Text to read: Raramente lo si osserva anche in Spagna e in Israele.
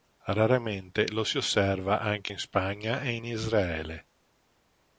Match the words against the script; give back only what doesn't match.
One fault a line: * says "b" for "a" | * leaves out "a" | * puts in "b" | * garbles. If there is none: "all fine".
all fine